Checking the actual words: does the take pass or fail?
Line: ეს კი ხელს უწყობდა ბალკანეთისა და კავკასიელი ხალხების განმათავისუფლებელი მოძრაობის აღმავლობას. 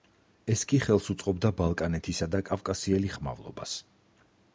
fail